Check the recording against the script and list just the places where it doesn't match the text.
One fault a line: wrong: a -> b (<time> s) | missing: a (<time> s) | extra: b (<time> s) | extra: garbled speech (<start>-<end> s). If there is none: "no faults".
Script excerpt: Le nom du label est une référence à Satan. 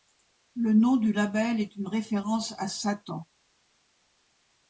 no faults